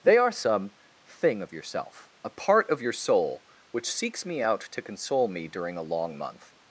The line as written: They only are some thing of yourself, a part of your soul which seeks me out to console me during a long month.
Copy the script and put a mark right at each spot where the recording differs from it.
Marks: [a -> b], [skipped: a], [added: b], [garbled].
They [skipped: only] are some thing of yourself, a part of your soul which seeks me out to console me during a long month.